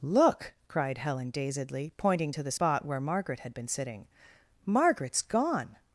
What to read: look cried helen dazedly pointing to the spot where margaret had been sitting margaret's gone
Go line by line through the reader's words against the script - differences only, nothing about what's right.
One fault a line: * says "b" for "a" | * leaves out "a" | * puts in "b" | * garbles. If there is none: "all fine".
all fine